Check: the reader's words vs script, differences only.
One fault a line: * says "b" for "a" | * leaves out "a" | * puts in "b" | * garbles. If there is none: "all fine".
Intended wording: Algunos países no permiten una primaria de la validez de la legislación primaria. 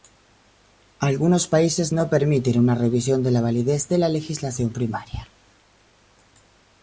* says "revisión" for "primaria"